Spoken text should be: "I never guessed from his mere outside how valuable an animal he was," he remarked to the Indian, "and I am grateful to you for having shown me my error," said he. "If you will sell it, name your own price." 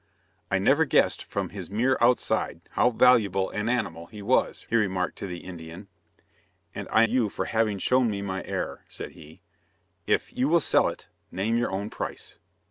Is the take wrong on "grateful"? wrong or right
wrong